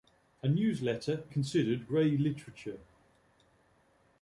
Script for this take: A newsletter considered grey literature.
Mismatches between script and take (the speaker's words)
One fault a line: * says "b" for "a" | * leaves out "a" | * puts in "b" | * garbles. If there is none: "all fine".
all fine